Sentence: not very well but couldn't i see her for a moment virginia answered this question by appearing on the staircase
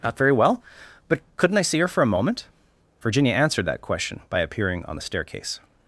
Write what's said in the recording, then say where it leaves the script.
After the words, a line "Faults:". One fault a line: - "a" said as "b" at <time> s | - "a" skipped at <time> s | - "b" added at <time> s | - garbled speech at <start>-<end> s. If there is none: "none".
not very well but couldn't i see her for a moment virginia answered that question by appearing on the staircase
Faults:
- "this" said as "that" at 3.6 s